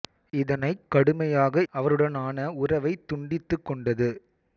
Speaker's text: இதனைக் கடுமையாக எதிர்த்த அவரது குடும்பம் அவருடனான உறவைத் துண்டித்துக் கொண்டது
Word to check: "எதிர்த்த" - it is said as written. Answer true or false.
false